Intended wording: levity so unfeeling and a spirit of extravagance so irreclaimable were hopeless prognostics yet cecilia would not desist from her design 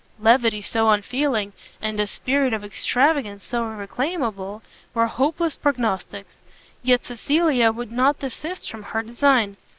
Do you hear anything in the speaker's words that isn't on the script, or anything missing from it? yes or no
no